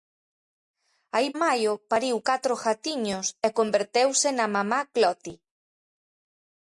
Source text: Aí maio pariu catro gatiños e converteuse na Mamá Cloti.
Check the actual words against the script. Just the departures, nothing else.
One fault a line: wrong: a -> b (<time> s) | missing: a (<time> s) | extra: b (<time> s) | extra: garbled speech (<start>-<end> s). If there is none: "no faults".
no faults